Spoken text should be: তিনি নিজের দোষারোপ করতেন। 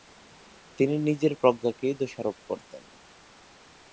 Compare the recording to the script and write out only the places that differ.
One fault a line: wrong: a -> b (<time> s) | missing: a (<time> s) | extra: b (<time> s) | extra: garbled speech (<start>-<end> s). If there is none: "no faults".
extra: প্রজ্ঞাকেই (1.3 s)